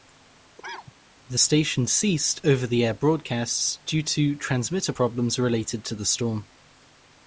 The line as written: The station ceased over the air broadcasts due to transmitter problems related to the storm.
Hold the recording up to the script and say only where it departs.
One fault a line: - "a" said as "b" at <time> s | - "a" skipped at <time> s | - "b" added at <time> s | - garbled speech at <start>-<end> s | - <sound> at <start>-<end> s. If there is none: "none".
- cough at 0.6-0.9 s